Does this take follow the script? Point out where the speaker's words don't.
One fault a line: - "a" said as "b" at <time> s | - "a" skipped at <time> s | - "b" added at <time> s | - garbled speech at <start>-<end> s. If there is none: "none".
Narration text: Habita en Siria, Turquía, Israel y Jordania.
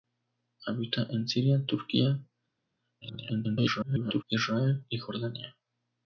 - garbled speech at 3.0-4.2 s